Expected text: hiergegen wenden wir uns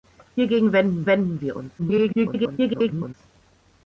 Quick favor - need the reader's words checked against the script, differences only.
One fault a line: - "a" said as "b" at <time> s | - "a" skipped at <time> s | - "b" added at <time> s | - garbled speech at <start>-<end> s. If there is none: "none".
- "wenden" added at 1.1 s
- garbled speech at 1.8-3.1 s